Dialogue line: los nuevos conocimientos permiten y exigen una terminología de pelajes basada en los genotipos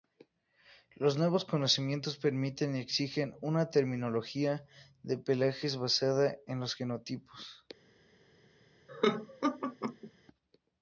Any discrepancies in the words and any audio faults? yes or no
yes